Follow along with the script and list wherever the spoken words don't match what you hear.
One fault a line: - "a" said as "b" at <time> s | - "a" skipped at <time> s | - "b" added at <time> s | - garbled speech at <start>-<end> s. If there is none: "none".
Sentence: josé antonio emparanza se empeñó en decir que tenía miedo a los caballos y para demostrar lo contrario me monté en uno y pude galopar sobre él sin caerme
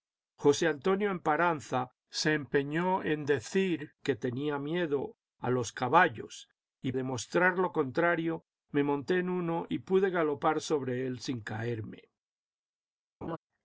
- "para" skipped at 6.9 s